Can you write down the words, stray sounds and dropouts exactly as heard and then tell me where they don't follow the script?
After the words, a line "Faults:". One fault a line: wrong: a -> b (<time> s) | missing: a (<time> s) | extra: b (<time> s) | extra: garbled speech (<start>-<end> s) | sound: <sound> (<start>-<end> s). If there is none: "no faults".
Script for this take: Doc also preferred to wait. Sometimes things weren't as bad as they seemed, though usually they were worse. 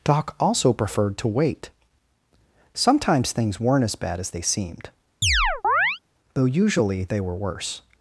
Doc also preferred to wait. Sometimes things weren't as bad as they seemed, though usually they were worse.
Faults:
sound: chirp (5.2-6.0 s)